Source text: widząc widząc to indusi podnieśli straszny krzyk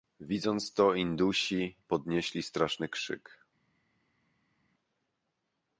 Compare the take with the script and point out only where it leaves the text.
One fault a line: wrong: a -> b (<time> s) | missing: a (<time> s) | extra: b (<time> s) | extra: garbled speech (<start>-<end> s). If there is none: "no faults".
missing: widząc (0.7 s)